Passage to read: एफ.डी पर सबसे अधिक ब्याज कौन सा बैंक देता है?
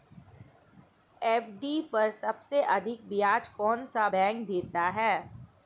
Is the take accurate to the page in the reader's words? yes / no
yes